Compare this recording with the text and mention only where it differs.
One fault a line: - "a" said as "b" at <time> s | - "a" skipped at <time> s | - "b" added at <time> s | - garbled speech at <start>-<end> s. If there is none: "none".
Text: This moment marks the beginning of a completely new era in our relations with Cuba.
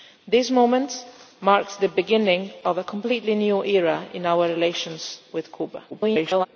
- garbled speech at 5.9-6.5 s